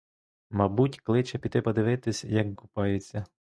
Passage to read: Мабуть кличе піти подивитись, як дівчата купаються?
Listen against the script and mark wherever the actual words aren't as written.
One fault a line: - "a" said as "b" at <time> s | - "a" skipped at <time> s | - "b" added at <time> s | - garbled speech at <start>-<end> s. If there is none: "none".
- "дівчата" skipped at 2.5 s